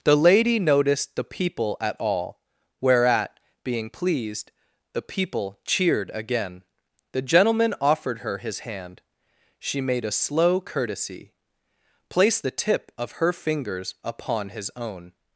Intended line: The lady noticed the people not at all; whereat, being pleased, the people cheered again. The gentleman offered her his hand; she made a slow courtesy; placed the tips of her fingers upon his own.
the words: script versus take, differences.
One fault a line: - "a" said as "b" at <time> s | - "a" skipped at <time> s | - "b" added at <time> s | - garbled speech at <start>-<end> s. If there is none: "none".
- "not" skipped at 1.8 s
- "tips" said as "tip" at 12.5 s